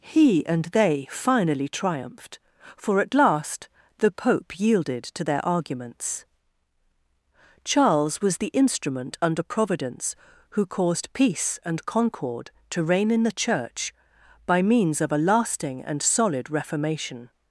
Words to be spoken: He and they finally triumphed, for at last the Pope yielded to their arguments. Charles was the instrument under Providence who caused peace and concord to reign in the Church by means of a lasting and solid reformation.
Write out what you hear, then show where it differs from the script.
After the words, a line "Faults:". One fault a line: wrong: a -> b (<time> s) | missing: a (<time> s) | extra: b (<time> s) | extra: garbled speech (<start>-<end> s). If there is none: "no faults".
He and they finally triumphed, for at last the Pope yielded to their arguments. Charles was the instrument under Providence who caused peace and concord to reign in the Church by means of a lasting and solid reformation.
Faults:
no faults